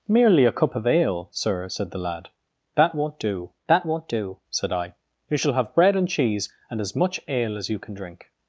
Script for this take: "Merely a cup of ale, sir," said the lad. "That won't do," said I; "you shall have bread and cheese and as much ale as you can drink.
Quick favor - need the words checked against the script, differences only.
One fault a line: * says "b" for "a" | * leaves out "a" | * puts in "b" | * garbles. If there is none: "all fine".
* puts in "that won't do"